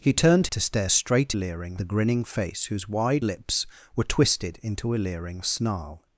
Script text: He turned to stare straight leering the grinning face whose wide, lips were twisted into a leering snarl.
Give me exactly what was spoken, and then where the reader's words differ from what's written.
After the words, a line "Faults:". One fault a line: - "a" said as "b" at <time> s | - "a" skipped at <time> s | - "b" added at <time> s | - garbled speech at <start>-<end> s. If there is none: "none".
He turned to stare straight leering the grinning face whose wide, lips were twisted into a leering snarl.
Faults:
none